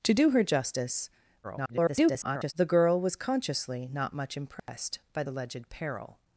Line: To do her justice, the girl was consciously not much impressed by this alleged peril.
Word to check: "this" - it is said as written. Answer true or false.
false